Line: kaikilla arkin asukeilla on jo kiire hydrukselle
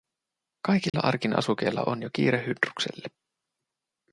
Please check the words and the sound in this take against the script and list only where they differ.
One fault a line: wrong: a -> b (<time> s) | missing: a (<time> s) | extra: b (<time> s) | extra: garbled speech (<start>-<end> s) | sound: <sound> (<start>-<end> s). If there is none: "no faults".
sound: dropout (0.9-0.9 s)